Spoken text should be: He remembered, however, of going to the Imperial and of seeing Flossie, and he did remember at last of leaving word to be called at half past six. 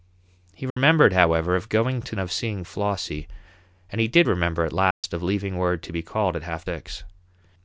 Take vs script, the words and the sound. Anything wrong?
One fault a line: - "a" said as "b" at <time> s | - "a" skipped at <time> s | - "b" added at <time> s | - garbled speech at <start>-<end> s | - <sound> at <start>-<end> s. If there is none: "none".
- dropout at 0.7-0.8 s
- "the Imperial and" skipped at 2.1 s
- dropout at 4.9-5.0 s
- "past" skipped at 6.7 s